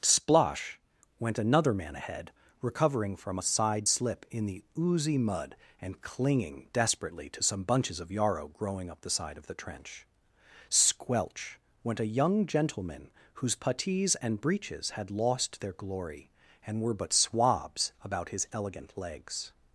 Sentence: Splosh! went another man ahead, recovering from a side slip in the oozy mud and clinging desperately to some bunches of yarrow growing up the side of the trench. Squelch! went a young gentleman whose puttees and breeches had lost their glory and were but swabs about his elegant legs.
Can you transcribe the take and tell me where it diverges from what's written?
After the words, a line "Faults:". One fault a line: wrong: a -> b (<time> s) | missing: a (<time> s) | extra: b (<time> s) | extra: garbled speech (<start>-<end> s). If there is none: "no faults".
Splosh! went another man ahead, recovering from a side slip in the oozy mud and clinging desperately to some bunches of yarrow growing up the side of the trench. Squelch! went a young gentleman whose puttees and breeches had lost their glory and were but swabs about his elegant legs.
Faults:
no faults